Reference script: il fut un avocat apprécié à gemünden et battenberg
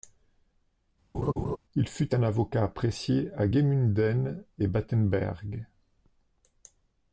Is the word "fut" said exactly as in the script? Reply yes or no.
yes